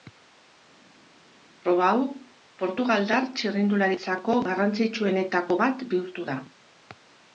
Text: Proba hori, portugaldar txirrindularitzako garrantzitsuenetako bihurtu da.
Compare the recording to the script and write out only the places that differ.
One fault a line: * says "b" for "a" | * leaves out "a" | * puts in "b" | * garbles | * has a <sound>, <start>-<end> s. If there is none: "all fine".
* says "hau" for "hori"
* puts in "bat"